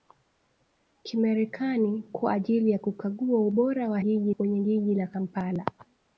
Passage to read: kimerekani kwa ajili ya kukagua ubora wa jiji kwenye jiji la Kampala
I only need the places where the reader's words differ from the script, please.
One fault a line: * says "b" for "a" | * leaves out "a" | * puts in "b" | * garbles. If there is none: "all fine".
all fine